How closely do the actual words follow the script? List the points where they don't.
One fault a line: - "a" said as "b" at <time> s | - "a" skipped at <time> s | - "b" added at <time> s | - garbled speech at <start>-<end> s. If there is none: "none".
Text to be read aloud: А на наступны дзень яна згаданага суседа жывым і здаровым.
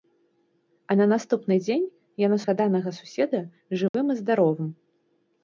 none